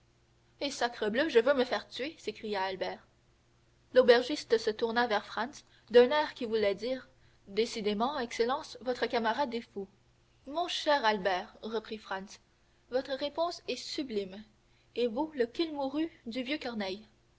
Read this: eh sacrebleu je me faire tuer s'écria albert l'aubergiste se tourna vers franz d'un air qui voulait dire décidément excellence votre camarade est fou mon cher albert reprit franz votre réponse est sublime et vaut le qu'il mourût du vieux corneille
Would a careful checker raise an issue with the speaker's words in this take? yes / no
yes